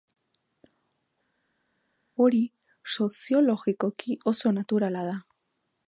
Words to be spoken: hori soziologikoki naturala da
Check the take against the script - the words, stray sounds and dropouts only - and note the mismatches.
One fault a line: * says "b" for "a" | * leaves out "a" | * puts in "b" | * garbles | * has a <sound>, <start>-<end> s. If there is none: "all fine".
* puts in "oso"